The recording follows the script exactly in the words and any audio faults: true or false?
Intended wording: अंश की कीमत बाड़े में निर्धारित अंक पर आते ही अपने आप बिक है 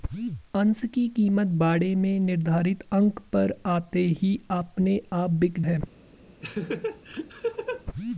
false